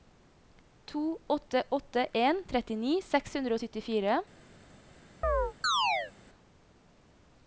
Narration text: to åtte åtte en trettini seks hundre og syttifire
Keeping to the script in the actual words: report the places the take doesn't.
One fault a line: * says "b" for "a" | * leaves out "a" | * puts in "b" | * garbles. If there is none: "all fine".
all fine